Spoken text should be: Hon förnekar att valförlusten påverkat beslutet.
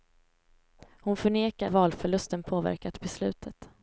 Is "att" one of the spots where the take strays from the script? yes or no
yes